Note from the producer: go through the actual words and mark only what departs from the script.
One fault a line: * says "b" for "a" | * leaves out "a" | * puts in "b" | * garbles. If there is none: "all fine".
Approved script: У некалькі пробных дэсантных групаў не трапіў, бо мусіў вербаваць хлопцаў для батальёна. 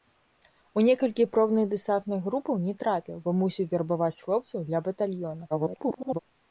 * garbles